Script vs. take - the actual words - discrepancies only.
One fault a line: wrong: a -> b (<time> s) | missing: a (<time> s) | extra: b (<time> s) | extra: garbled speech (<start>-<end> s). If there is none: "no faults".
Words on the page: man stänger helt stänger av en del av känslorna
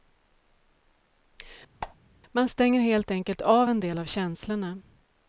wrong: stänger -> enkelt (3.1 s)